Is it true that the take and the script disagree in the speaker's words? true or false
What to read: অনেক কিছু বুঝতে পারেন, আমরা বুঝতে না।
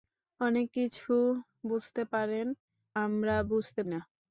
false